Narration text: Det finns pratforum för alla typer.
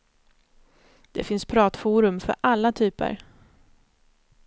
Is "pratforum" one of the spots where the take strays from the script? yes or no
no